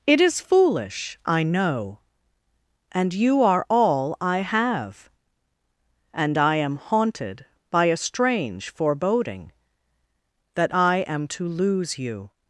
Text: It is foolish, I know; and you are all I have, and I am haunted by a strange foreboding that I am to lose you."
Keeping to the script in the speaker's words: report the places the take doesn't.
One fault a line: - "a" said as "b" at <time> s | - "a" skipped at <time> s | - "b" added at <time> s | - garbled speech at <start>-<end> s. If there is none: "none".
none